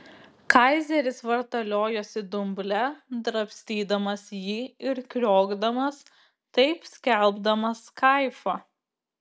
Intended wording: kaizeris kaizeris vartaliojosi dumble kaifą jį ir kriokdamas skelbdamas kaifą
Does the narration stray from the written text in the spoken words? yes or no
yes